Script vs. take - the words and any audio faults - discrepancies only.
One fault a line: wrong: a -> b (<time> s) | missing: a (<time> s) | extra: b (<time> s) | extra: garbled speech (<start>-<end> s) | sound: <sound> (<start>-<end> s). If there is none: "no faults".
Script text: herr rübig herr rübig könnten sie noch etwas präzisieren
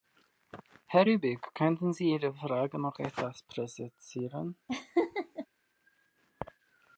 wrong: herr rübig könnten sie -> könnten sie ihre frage (1.5 s)
sound: laugh (4.7-5.5 s)